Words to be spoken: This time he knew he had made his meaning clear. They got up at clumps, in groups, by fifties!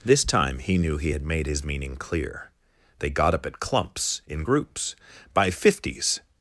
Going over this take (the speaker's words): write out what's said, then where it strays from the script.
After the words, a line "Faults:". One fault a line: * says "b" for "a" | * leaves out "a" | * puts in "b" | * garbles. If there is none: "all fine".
This time he knew he had made his meaning clear. They got up at clumps, in groups, by fifties!
Faults:
all fine